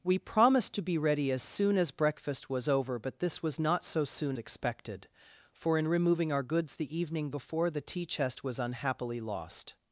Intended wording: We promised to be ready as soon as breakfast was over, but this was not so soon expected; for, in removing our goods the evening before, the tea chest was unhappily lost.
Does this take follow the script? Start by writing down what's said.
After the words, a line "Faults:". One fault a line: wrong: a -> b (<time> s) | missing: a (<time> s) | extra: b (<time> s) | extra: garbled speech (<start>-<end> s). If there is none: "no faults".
We promised to be ready as soon as breakfast was over, but this was not so soon expected; for, in removing our goods the evening before, the tea chest was unhappily lost.
Faults:
no faults